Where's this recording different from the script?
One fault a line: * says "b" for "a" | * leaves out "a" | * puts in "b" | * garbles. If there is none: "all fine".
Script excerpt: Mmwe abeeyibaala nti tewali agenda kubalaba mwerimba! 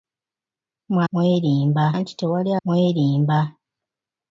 * says "mwerimba" for "abeeyibaala"
* leaves out "agenda kubalaba"